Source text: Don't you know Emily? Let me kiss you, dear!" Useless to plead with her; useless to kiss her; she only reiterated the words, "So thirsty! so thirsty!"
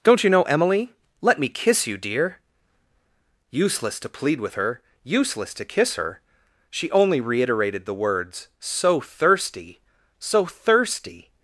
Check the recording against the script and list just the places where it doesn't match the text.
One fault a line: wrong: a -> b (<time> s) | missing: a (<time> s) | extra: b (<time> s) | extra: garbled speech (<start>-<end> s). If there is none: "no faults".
no faults